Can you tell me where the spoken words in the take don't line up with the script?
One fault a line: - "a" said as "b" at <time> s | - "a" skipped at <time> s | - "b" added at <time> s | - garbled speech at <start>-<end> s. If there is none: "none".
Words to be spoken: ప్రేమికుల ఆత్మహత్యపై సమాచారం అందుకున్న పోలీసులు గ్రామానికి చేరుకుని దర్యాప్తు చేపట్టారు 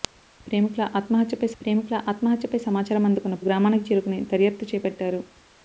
- "ప్రేమికుల ఆత్మహత్యపై" added at 1.6 s
- "పోలీసులు" skipped at 3.4 s